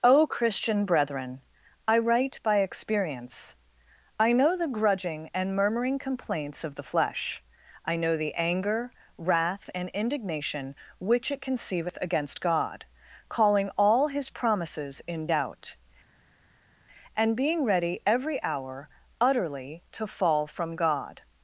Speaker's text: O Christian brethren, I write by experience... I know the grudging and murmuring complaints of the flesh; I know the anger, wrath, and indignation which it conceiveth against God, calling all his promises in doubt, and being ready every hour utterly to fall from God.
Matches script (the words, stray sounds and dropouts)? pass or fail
pass